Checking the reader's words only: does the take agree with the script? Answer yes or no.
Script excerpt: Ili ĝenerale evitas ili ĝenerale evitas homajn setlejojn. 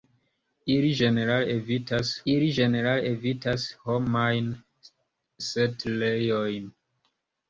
yes